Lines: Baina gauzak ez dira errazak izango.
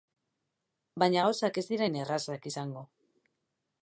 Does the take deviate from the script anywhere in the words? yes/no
yes